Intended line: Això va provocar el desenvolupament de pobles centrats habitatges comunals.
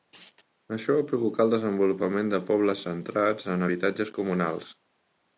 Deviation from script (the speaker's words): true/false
true